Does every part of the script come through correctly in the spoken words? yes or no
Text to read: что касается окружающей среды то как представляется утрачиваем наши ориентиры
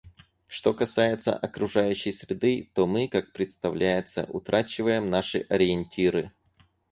no